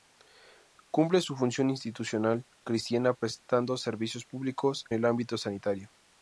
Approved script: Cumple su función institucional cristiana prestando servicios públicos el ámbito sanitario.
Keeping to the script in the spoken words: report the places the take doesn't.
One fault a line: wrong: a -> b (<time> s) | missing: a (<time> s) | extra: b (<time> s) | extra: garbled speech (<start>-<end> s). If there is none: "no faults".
no faults